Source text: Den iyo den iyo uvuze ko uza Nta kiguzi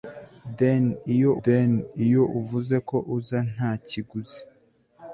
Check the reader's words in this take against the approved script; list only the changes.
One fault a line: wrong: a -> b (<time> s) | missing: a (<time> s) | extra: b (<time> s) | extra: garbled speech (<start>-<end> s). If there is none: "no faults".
no faults